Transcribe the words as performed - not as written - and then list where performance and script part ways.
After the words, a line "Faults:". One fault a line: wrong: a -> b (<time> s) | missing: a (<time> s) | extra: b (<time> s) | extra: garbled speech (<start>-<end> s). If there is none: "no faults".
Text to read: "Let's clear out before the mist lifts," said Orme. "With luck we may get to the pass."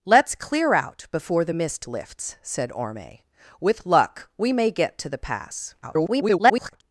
"Let's clear out before the mist lifts," said Orme. "With luck we may get to the pass." [garbled]
Faults:
extra: garbled speech (5.8-6.8 s)